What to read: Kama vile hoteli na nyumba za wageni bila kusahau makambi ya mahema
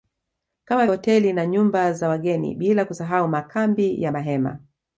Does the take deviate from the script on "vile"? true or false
true